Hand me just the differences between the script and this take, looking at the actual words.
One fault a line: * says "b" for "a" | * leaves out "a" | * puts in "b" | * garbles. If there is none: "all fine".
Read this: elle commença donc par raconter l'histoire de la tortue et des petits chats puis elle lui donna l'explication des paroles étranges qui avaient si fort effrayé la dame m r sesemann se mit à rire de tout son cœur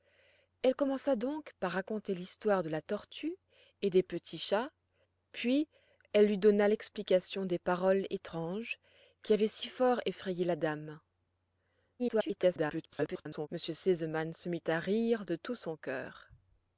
* garbles